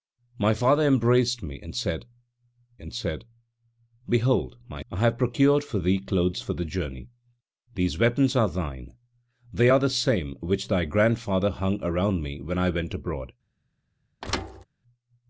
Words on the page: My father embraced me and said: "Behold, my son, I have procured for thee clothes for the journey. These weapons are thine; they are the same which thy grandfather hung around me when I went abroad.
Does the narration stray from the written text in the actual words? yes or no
yes